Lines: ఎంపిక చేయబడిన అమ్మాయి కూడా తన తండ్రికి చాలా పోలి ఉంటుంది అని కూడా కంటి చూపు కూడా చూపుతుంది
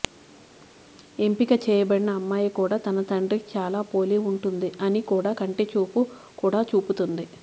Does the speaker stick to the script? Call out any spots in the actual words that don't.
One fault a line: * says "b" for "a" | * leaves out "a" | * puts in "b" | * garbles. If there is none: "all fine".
all fine